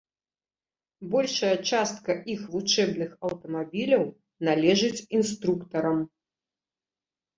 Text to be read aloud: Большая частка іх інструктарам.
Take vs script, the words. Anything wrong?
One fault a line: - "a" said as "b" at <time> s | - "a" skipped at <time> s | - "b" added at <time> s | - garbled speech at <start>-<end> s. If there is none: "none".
- "вучэбных аўтамабіляў належыць" added at 2.6 s